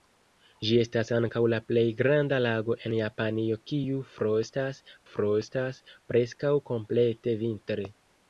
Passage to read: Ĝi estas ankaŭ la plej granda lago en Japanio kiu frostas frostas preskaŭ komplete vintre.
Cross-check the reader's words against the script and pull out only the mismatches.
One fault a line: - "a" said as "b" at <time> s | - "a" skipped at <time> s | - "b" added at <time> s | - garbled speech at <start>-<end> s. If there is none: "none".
none